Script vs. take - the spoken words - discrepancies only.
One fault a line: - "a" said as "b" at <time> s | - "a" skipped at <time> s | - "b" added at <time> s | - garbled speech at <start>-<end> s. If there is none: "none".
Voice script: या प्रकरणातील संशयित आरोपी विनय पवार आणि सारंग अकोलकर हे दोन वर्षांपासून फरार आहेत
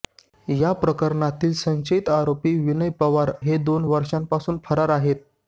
- "आणि सारंग अकोलकर" skipped at 3.3 s